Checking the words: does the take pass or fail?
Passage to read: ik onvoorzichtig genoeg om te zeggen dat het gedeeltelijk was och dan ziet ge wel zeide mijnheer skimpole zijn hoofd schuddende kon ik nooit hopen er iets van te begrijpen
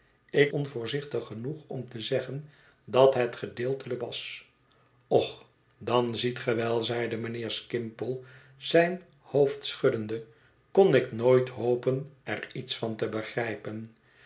pass